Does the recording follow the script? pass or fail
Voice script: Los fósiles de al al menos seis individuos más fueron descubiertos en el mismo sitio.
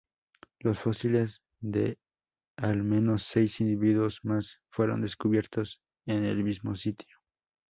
fail